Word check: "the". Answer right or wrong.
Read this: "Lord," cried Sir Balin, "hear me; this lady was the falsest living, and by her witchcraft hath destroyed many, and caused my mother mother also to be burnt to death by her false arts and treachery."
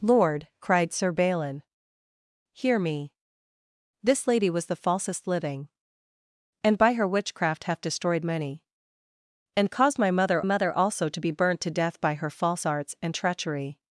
right